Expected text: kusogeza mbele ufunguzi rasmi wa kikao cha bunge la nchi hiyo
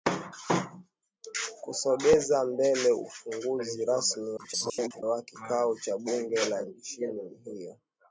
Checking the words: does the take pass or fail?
fail